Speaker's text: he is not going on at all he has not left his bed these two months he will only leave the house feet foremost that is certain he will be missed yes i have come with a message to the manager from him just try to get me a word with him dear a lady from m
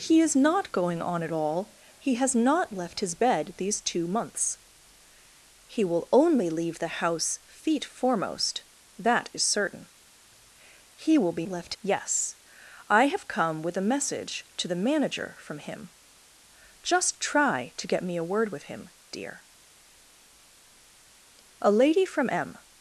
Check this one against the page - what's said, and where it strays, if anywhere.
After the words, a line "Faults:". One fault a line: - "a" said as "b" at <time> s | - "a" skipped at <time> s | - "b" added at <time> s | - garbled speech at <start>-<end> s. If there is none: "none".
he is not going on at all he has not left his bed these two months he will only leave the house feet foremost that is certain he will be left yes i have come with a message to the manager from him just try to get me a word with him dear a lady from m
Faults:
- "missed" said as "left" at 11.5 s